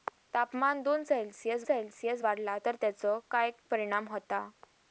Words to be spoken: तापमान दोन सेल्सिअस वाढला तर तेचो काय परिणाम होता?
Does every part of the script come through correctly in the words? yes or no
no